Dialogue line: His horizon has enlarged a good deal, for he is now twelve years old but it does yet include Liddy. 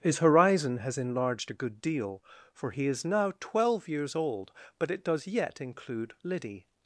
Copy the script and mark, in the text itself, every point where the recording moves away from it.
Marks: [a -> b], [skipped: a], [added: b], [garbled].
His horizon has enlarged a good deal, for he is now twelve years old but it does yet include Liddy.